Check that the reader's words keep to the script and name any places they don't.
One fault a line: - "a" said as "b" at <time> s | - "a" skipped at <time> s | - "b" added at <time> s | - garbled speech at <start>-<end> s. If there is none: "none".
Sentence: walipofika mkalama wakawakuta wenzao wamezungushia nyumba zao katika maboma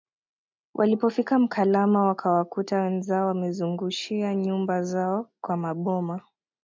- "katika" said as "kwa" at 5.4 s